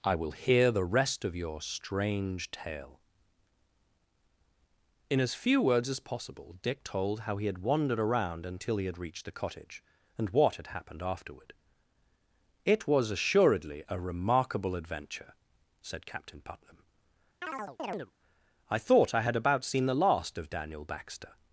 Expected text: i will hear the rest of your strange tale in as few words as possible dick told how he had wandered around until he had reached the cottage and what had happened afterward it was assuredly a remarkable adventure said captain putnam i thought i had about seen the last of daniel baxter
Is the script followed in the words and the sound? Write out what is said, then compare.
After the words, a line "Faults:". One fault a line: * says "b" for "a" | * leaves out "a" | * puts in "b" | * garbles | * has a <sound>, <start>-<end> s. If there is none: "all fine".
i will hear the rest of your strange tale in as few words as possible dick told how he had wandered around until he had reached the cottage and what had happened afterward it was assuredly a remarkable adventure said captain putnam i thought i had about seen the last of daniel baxter
Faults:
* has a chirp, 17.4-18.1 s